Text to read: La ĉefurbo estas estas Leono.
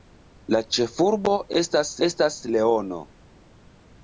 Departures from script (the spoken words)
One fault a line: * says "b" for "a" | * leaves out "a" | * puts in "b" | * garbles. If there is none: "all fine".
all fine